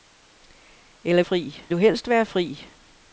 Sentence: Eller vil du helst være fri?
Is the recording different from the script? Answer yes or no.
yes